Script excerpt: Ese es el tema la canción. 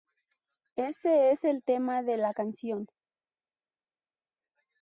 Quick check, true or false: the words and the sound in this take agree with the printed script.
false